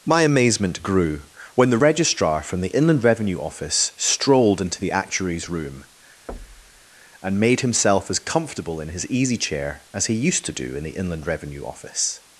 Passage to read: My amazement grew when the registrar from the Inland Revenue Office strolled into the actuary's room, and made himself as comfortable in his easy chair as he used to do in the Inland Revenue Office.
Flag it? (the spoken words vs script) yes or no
no